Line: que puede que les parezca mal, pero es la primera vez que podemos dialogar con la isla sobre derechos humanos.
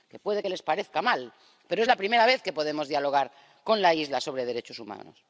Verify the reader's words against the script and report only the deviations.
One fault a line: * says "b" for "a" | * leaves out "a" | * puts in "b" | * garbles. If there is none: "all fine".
all fine